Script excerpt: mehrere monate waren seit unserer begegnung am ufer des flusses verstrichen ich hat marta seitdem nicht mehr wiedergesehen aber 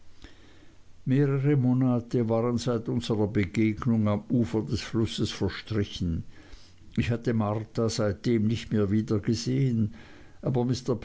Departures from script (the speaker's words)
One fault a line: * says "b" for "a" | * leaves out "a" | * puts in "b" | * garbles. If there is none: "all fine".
* says "hatte" for "hat"